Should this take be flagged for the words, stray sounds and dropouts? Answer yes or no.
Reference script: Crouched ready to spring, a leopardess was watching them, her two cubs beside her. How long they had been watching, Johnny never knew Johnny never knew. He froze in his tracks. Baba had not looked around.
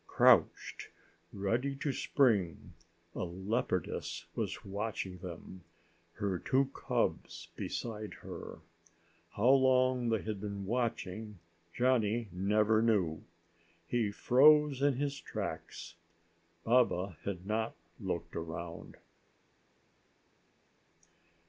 yes